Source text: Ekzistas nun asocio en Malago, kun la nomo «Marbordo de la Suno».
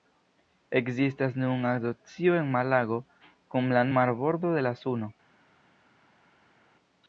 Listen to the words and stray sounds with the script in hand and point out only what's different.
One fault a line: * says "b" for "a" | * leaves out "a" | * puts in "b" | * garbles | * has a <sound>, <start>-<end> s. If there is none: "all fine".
* leaves out "nomo"